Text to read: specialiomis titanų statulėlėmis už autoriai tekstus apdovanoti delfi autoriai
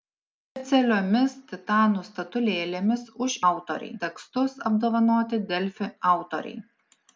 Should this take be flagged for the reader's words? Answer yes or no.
no